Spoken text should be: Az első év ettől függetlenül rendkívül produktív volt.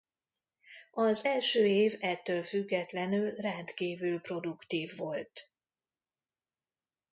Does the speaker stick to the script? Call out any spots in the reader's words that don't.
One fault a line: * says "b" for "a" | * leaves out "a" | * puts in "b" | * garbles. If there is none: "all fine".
all fine